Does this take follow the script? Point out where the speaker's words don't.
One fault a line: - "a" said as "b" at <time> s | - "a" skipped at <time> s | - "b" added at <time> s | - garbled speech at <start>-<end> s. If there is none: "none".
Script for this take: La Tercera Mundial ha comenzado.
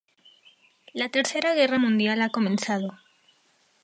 - "Guerra" added at 1.5 s